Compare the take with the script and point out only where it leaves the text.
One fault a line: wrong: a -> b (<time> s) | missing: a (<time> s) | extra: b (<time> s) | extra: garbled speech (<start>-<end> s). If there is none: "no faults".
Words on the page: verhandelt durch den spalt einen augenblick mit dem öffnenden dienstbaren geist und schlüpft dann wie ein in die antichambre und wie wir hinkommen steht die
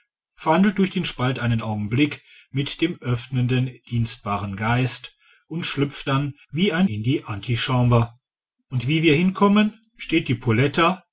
no faults